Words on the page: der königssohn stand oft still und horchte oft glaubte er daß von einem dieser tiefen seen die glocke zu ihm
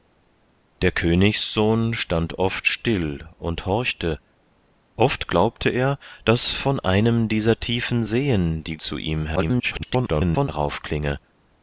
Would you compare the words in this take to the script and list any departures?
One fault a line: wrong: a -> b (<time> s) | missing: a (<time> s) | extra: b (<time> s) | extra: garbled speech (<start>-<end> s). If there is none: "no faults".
missing: glocke (8.8 s)
extra: garbled speech (9.4-10.5 s)